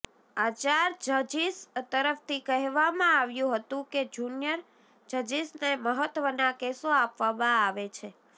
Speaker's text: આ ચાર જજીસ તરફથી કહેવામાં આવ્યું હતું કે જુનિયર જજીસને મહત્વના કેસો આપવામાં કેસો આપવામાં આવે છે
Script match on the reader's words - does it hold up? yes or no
no